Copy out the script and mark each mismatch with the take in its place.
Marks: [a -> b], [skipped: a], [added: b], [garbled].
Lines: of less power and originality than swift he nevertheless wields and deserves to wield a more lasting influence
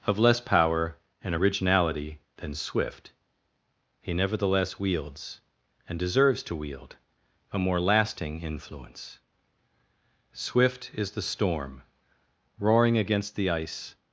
of less power and originality than swift he nevertheless wields and deserves to wield a more lasting influence [added: swift is the storm roaring against the ice]